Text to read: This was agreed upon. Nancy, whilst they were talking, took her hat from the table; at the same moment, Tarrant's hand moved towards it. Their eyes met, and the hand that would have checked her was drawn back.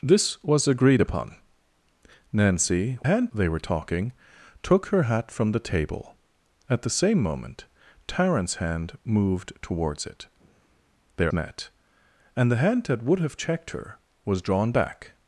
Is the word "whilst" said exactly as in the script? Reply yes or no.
no